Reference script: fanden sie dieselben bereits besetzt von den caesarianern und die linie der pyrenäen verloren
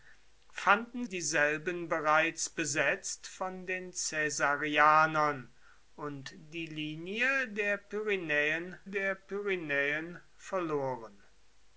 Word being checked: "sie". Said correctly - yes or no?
no